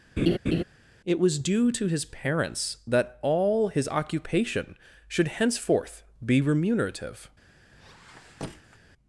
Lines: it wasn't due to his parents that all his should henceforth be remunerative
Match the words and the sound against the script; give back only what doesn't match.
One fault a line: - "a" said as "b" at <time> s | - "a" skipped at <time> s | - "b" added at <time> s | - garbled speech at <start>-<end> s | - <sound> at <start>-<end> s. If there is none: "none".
- laugh at 0.2-0.6 s
- "wasn't" said as "was" at 1.2 s
- "occupation" added at 3.9 s
- squeak at 7.7-8.8 s